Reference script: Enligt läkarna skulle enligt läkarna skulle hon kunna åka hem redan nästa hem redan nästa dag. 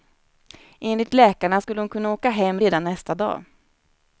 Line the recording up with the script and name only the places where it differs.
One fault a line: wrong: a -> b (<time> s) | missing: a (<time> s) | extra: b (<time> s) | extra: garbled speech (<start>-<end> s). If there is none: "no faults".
missing: enligt läkarna skulle (1.8 s)
missing: hem redan nästa (3.1 s)